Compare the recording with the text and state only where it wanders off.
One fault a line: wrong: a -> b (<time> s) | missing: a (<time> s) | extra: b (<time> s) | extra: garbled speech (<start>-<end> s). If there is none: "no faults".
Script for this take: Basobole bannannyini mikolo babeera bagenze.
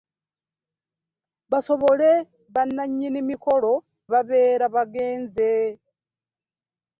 no faults